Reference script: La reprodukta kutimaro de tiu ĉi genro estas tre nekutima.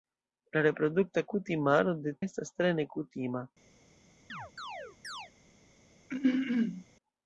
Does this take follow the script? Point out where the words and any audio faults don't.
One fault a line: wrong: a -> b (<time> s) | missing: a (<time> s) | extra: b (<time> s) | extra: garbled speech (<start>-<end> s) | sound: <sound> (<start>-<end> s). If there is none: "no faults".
missing: tiu ĉi genro (2.2 s)
sound: chirp (4.3-5.3 s)
sound: throat clearing (6.1-6.8 s)